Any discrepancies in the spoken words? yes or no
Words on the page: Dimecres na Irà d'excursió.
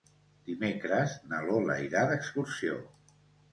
yes